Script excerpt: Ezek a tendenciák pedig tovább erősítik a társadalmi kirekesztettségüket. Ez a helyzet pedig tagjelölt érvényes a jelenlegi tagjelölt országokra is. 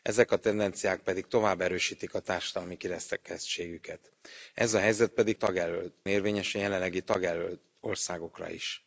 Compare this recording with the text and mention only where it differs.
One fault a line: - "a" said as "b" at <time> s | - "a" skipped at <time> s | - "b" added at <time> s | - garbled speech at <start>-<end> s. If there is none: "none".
none